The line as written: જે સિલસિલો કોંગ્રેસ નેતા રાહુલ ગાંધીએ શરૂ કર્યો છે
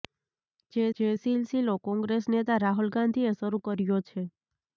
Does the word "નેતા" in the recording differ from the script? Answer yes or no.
no